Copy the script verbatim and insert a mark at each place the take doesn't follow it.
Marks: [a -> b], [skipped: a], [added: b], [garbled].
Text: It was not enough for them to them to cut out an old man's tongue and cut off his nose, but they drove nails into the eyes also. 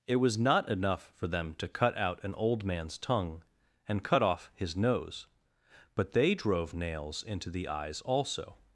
It was not enough for them to [skipped: them to] cut out an old man's tongue and cut off his nose, but they drove nails into the eyes also.